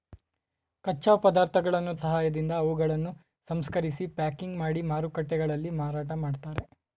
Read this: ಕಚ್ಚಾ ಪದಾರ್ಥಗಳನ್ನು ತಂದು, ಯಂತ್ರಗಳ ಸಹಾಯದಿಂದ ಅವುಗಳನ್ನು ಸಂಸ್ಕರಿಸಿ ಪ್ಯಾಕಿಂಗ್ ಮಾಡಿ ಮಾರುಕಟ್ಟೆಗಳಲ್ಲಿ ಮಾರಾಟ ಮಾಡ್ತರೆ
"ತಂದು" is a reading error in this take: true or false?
true